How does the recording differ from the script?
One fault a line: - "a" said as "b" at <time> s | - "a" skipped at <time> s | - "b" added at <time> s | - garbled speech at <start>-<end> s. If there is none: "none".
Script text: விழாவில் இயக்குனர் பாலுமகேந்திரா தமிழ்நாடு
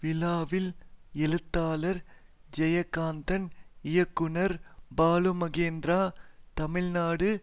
- "எழுத்தாளர் ஜெயகாந்தன்" added at 1.2 s